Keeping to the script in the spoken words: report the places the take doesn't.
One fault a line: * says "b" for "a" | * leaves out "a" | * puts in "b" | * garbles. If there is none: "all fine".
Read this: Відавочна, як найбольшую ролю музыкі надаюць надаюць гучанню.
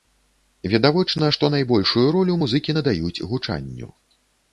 * says "што" for "як"
* leaves out "надаюць"